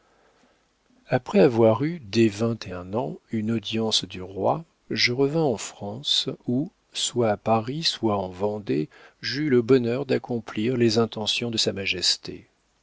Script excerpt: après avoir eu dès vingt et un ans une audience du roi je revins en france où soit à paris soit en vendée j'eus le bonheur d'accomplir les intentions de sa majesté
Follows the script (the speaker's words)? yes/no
yes